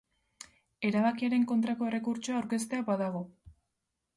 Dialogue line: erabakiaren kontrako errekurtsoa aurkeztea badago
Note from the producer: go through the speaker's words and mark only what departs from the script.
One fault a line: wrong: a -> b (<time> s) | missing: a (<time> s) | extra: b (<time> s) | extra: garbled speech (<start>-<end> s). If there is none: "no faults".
no faults